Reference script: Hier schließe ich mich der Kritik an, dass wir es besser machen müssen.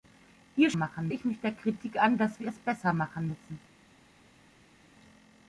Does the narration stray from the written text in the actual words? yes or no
yes